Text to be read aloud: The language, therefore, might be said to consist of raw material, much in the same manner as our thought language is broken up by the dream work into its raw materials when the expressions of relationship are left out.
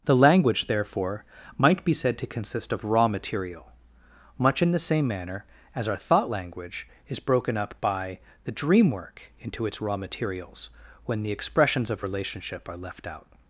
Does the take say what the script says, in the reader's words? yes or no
yes